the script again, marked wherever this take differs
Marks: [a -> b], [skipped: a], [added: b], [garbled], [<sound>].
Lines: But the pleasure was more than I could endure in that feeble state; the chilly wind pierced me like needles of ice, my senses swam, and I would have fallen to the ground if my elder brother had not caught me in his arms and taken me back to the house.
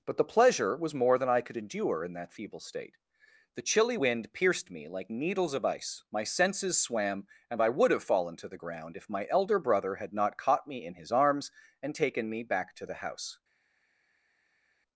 But the pleasure was more than I could endure in that feeble state; the chilly wind pierced me like needles of ice, my senses swam, and I would have fallen to the ground if my elder brother had not caught me in his arms and taken me back to the house.